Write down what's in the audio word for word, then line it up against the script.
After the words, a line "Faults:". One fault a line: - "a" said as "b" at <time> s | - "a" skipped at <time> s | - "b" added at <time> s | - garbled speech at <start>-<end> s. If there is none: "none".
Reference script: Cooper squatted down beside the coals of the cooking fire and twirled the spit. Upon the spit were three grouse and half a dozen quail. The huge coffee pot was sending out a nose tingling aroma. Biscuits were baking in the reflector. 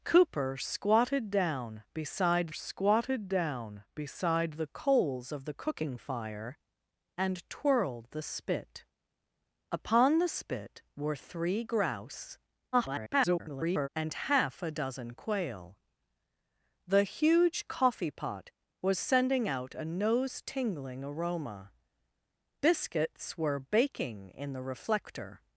Cooper squatted down beside squatted down beside the coals of the cooking fire and twirled the spit. Upon the spit were three grouse [garbled] and half a dozen quail. The huge coffee pot was sending out a nose tingling aroma. Biscuits were baking in the reflector.
Faults:
- "squatted down beside" added at 2.5 s
- garbled speech at 12.7-13.9 s